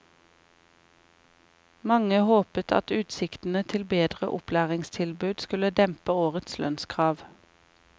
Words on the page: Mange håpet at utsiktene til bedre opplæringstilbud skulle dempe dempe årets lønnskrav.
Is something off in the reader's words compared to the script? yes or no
yes